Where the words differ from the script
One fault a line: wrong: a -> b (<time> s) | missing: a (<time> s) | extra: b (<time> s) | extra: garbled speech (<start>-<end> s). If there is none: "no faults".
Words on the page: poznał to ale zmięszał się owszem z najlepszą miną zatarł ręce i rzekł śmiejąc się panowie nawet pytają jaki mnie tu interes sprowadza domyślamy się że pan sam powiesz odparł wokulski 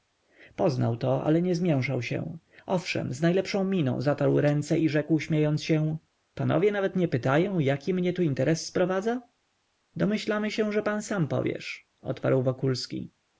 extra: nie (1.4 s)
extra: nie (7.0 s)